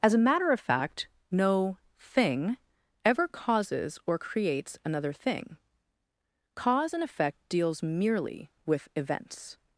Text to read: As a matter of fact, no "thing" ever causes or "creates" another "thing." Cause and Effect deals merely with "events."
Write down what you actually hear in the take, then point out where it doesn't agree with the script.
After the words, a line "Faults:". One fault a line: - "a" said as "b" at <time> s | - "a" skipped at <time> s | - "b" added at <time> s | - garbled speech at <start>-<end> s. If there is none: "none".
As a matter of fact, no "thing" ever causes or "creates" another "thing." Cause and Effect deals merely with "events."
Faults:
none